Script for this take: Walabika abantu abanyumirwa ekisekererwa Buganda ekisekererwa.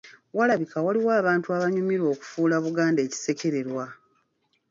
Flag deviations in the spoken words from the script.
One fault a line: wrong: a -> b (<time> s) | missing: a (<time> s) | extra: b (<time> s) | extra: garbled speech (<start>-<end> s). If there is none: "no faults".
extra: waliwo (0.8 s)
wrong: ekisekererwa -> okufuula (2.1 s)